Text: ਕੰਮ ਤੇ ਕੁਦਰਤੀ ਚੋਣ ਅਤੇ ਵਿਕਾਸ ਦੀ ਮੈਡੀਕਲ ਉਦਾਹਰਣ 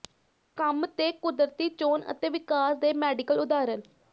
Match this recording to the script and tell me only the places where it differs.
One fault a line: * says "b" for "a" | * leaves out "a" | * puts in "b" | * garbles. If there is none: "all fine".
* says "ਦੇ" for "ਦੀ"